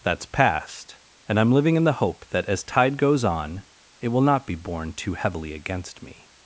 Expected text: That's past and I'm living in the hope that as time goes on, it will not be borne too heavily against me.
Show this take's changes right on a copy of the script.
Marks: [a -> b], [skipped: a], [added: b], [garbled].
That's past and I'm living in the hope that as [time -> tide] goes on, it will not be borne too heavily against me.